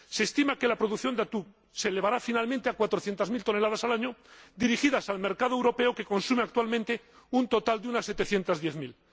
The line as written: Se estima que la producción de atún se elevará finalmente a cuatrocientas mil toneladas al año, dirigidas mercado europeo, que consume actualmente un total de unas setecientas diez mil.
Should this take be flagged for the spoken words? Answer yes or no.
yes